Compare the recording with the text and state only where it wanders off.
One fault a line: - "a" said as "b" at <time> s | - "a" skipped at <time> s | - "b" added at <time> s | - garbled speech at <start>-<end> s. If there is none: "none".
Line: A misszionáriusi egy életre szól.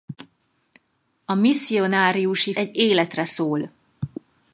none